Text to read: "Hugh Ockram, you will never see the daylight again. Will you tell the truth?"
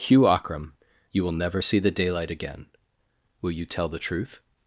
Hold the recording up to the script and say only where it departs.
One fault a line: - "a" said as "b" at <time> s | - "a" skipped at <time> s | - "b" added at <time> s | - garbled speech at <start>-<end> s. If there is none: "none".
none